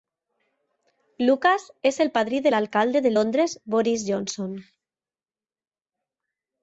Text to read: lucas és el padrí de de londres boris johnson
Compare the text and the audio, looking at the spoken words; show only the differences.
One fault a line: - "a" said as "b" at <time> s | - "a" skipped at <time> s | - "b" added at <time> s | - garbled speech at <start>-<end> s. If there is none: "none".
- "l'alcalde" added at 2.5 s